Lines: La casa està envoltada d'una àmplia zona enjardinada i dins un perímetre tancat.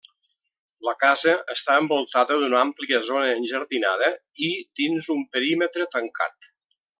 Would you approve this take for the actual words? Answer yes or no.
yes